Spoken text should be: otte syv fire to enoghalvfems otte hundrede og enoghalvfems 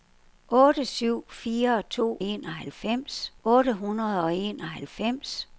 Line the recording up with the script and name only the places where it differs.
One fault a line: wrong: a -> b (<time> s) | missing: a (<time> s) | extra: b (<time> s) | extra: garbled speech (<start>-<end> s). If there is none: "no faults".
no faults